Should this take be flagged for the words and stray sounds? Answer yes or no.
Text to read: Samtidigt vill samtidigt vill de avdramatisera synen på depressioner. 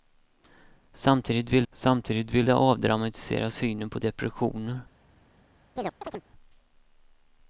yes